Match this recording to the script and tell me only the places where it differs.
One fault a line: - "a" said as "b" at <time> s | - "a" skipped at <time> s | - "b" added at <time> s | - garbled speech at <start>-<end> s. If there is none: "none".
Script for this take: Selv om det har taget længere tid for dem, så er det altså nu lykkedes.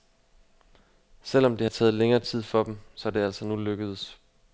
none